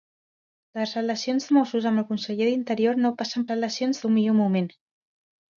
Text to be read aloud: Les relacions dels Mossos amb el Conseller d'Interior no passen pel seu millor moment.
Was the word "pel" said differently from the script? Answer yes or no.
yes